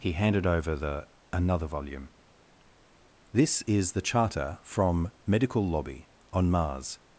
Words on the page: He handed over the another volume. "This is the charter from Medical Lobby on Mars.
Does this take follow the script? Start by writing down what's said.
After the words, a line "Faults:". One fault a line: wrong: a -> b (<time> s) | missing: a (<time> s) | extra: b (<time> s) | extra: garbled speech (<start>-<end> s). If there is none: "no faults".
He handed over the another volume. "This is the charter from Medical Lobby on Mars.
Faults:
no faults